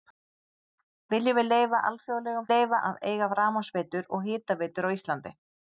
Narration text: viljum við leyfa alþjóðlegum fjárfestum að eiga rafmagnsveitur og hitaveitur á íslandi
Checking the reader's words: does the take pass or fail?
fail